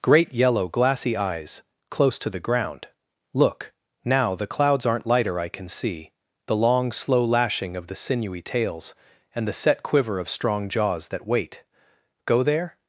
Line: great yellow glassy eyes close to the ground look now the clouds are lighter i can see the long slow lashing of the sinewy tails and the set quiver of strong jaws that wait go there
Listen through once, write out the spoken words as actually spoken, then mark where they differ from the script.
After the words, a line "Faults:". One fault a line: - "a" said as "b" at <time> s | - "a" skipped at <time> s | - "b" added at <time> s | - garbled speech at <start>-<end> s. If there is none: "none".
great yellow glassy eyes close to the ground look now the clouds aren't lighter i can see the long slow lashing of the sinewy tails and the set quiver of strong jaws that wait go there
Faults:
- "are" said as "aren't" at 4.9 s